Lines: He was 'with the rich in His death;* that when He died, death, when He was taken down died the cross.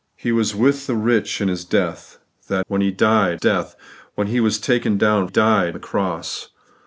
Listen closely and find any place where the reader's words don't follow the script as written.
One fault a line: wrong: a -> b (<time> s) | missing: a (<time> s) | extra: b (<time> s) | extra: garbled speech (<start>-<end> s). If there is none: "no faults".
no faults